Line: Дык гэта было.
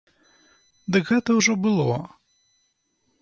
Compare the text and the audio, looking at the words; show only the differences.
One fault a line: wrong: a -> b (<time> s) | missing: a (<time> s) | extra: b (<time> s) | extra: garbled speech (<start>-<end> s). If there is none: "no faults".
extra: ўжо (1.4 s)